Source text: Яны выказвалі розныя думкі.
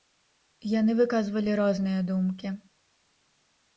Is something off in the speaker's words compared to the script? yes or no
no